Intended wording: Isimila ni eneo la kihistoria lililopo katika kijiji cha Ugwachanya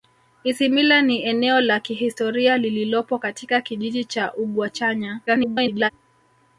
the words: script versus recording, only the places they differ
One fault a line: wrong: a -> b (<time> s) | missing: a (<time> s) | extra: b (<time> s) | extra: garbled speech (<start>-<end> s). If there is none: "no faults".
extra: garbled speech (5.3-5.9 s)